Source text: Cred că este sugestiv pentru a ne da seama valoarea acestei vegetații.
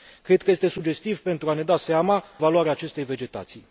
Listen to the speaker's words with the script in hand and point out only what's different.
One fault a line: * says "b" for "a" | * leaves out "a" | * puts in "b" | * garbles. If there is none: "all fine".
all fine